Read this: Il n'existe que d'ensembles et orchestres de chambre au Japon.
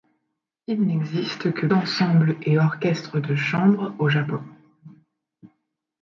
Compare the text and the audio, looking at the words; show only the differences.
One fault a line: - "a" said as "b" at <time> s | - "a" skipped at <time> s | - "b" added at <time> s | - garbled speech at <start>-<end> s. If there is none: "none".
none